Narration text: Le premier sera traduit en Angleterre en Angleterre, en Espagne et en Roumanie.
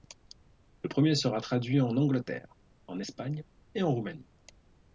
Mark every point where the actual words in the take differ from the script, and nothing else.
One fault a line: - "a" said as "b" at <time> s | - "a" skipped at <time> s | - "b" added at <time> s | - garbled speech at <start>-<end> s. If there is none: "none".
- "Angleterre en" skipped at 3.0 s